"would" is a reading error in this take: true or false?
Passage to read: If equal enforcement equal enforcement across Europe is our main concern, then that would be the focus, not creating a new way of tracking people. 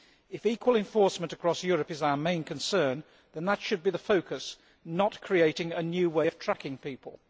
true